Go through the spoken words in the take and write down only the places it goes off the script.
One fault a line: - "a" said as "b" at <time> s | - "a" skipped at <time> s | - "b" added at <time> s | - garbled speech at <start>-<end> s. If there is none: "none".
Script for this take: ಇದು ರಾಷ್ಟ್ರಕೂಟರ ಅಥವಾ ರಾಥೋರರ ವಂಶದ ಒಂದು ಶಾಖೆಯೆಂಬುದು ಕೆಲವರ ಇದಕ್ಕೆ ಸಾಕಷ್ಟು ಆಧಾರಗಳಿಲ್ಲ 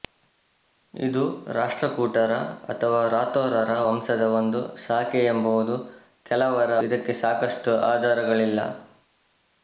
none